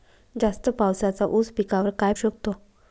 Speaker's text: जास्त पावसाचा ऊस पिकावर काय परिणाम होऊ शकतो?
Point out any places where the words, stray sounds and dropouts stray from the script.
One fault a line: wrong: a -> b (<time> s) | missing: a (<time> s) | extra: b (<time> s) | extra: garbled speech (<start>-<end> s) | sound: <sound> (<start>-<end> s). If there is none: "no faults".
missing: परिणाम होऊ (2.1 s)